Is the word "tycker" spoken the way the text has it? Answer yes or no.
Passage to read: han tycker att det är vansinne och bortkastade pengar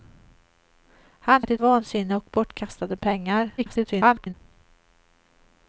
no